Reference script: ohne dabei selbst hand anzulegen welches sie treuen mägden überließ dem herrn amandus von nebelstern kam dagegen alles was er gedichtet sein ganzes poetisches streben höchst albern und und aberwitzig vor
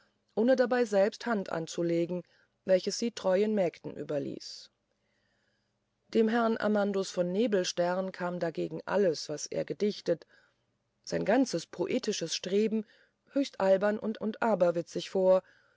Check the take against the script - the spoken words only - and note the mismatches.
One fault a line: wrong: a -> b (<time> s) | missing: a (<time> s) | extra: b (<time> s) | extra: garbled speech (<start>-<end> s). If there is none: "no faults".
no faults